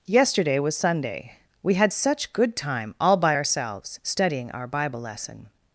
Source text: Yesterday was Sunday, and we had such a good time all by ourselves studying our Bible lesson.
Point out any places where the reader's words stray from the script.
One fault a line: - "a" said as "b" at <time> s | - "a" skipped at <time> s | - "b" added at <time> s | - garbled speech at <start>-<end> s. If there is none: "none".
- "and" skipped at 1.3 s
- "a" skipped at 2.3 s